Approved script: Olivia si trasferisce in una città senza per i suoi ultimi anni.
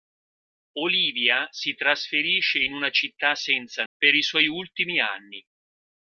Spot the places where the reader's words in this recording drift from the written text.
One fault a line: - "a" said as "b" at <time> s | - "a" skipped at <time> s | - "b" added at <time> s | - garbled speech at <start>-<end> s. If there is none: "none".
none